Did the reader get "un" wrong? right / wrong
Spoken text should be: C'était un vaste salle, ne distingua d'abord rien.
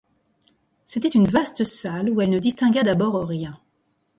wrong